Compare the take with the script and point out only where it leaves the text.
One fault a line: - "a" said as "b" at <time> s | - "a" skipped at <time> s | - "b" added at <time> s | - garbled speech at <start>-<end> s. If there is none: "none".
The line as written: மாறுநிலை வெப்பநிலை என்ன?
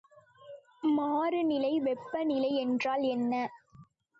- "என்றால்" added at 2.5 s